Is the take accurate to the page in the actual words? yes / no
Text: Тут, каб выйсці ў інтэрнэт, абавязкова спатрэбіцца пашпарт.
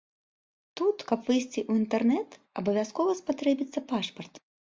yes